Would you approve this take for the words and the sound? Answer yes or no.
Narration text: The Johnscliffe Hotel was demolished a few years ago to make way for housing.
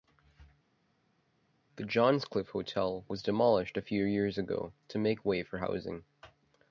yes